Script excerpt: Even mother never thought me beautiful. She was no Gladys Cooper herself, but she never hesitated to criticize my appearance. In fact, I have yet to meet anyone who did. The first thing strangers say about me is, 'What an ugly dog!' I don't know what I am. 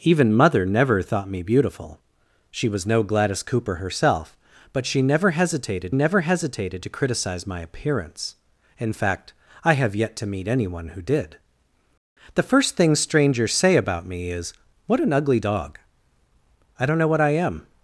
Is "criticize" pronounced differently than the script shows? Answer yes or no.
no